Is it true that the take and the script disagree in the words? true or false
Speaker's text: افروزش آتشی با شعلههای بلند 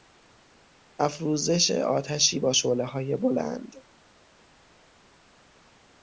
false